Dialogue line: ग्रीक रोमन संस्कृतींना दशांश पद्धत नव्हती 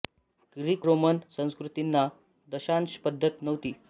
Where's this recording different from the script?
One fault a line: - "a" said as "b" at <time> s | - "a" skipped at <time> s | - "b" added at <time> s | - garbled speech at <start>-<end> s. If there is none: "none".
none